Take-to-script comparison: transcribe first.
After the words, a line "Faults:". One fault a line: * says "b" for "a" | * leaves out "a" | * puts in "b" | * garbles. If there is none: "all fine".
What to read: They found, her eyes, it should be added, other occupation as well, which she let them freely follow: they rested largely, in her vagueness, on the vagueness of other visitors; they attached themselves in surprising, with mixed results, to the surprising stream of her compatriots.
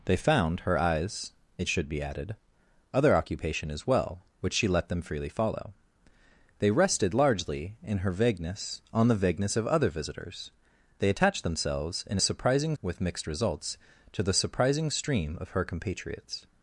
They found, her eyes, it should be added, other occupation as well, which she let them freely follow: they rested largely, in her vagueness, on the vagueness of other visitors; they attached themselves in surprising, with mixed results, to the surprising stream of her compatriots.
Faults:
all fine